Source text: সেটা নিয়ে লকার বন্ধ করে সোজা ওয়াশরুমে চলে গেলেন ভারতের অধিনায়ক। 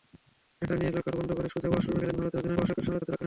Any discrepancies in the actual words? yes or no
yes